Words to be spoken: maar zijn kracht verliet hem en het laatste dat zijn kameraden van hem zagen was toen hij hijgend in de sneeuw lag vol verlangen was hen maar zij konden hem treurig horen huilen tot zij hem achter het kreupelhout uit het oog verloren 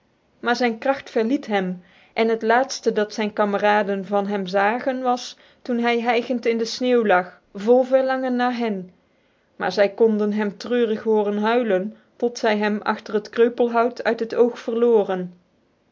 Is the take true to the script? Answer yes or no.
no